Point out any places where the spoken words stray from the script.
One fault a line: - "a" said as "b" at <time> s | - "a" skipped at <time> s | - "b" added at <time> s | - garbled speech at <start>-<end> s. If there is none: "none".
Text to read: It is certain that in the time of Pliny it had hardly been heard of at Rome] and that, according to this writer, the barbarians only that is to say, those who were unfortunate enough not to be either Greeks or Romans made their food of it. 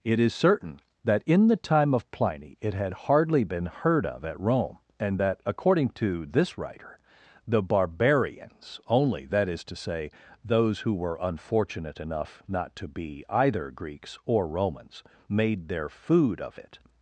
none